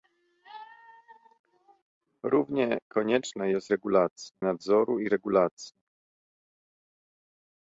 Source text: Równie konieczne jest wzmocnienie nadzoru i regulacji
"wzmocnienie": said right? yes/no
no